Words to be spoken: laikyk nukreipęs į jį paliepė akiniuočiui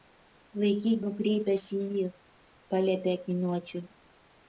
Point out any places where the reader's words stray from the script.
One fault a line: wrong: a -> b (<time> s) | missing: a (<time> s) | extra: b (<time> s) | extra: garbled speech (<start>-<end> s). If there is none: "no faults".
no faults